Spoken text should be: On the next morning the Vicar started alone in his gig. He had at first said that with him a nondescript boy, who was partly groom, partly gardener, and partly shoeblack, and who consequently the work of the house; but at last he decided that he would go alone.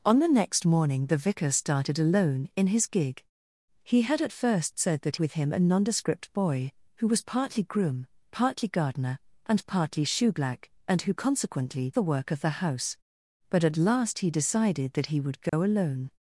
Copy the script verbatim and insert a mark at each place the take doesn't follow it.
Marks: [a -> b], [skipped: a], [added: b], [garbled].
On the next morning the Vicar started alone in his gig. He had at first said that with him a nondescript boy, who was partly groom, partly gardener, and partly shoeblack, and who consequently the work of the house; but at last he decided that he would go alone.